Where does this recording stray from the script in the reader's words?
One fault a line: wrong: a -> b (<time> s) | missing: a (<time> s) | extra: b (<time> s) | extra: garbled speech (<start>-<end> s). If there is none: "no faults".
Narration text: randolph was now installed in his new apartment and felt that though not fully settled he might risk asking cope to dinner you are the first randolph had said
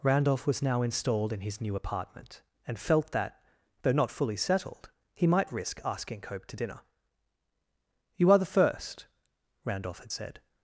no faults